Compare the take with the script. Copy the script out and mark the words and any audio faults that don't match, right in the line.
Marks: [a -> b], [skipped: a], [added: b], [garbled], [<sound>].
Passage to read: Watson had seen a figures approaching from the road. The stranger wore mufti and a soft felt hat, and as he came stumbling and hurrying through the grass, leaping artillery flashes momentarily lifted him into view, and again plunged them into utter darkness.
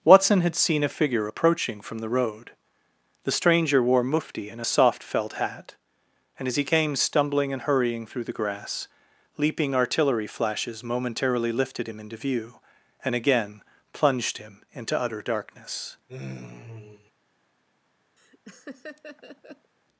Watson had seen a [figures -> figure] approaching from the road. The stranger wore mufti and a soft felt hat, and as he came stumbling and hurrying through the grass, leaping artillery flashes momentarily lifted him into view, and again plunged [them -> him] into utter darkness. [sigh] [laugh]